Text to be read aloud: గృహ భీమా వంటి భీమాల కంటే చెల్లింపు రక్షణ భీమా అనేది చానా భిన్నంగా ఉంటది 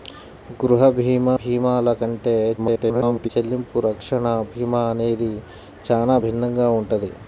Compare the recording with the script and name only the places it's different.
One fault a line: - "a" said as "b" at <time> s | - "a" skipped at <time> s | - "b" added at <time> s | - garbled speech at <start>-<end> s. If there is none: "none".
- "వంటి" skipped at 1.4 s
- garbled speech at 2.6-3.3 s